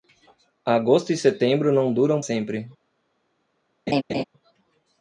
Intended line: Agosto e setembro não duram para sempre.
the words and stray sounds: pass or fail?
fail